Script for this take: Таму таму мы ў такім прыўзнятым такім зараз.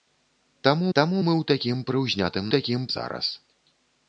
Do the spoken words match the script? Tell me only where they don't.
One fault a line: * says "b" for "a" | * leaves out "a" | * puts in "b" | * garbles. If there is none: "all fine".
all fine